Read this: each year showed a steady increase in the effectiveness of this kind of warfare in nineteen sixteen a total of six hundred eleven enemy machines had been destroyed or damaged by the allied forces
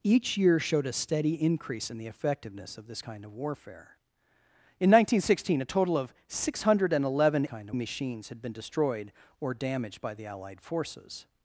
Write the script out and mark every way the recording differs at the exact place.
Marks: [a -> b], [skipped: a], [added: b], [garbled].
each year showed a steady increase in the effectiveness of this kind of warfare in nineteen sixteen a total of six hundred eleven [enemy -> kind] machines had been destroyed or damaged by the allied forces